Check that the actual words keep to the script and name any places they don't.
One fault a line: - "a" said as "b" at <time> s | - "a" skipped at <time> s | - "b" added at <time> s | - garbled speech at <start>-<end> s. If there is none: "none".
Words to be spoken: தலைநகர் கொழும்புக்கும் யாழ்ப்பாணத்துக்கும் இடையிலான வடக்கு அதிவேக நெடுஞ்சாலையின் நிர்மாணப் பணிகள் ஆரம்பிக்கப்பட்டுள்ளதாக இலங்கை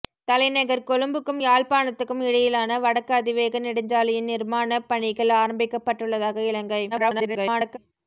- garbled speech at 6.9-7.8 s